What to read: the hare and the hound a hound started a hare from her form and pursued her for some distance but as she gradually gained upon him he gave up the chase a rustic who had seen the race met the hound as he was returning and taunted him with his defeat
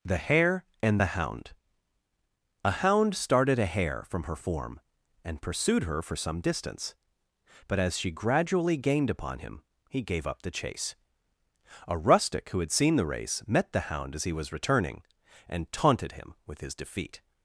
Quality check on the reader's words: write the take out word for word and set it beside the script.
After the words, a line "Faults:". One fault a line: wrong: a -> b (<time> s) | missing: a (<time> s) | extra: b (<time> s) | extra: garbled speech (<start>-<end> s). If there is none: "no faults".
the hare and the hound a hound started a hare from her form and pursued her for some distance but as she gradually gained upon him he gave up the chase a rustic who had seen the race met the hound as he was returning and taunted him with his defeat
Faults:
no faults